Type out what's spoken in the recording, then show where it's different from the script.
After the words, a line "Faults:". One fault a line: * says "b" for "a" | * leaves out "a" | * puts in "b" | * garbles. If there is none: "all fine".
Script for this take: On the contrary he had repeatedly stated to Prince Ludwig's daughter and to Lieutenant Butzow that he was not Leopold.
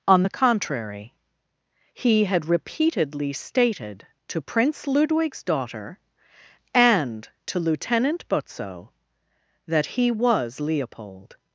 On the contrary he had repeatedly stated to Prince Ludwig's daughter and to Lieutenant Butzow that he was Leopold.
Faults:
* leaves out "not"